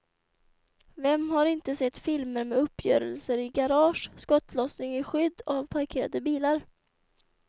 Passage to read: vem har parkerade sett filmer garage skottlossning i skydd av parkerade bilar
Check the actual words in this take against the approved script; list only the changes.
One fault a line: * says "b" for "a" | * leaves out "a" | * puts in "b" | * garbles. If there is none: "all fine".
* says "inte" for "parkerade"
* puts in "med uppgörelser i"